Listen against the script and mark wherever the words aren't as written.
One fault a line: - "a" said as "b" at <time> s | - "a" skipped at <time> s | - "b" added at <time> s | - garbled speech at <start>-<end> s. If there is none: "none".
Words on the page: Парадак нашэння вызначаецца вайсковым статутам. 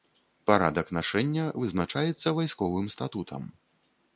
none